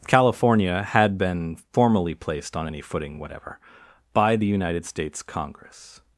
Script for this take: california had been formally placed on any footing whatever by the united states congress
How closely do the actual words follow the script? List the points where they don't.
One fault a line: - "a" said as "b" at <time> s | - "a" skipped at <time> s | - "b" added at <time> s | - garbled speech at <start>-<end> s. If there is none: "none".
none